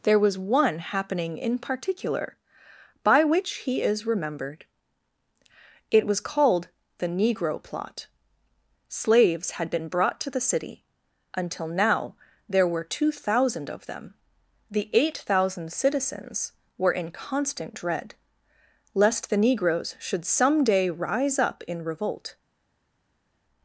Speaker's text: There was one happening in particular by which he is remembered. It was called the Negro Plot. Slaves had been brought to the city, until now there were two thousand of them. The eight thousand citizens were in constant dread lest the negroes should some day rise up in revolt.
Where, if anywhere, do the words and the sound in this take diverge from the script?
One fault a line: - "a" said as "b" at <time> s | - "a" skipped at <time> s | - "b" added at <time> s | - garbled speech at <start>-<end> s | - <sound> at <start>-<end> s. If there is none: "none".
none